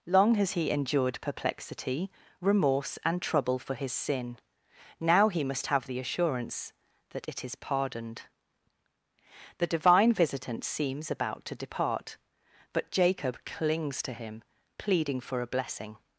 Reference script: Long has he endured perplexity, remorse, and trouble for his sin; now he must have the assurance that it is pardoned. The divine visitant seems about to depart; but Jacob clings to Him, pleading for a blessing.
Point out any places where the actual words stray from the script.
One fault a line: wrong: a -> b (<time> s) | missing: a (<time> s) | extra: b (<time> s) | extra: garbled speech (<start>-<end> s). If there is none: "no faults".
no faults